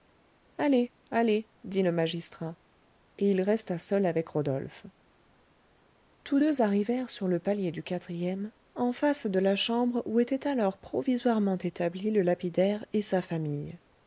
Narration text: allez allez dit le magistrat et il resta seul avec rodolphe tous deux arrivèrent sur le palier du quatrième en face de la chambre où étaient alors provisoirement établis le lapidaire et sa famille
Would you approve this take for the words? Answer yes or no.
yes